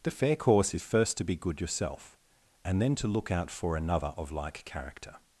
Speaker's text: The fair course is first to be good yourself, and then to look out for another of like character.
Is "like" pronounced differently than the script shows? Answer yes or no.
no